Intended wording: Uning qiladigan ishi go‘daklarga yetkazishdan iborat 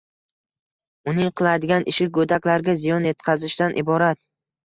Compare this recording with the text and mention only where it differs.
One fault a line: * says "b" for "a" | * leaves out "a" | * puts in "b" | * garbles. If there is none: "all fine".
* puts in "ziyon"